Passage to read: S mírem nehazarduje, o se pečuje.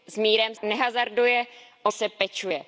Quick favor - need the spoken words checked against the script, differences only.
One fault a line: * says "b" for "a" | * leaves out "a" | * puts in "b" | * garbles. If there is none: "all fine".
all fine